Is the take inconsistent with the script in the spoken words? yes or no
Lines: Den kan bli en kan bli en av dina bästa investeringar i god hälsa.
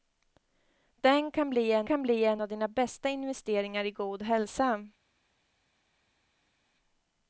no